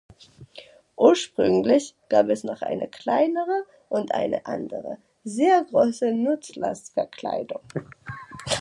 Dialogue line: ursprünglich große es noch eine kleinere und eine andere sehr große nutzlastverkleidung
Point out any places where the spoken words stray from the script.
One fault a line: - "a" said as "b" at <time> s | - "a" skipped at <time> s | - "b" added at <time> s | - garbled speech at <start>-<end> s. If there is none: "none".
- "große" said as "gab" at 2.1 s